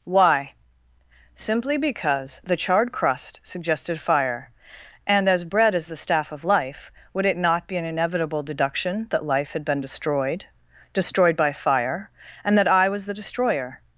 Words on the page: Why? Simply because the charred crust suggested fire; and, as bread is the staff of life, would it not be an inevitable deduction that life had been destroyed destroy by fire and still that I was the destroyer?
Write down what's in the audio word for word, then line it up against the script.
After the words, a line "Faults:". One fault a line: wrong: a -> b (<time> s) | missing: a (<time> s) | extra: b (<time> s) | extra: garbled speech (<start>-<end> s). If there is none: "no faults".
Why? Simply because the charred crust suggested fire; and, as bread is the staff of life, would it not be an inevitable deduction that life had been destroyed destroyed by fire and that I was the destroyer?
Faults:
wrong: destroy -> destroyed (10.9 s)
missing: still (12.6 s)